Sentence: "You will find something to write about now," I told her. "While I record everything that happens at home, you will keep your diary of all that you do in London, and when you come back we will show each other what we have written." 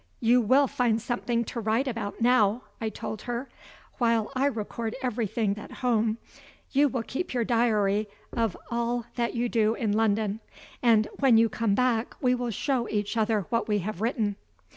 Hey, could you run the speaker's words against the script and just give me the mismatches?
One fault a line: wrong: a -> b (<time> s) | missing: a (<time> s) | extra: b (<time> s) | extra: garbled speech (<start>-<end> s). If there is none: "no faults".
missing: that happens (5.5 s)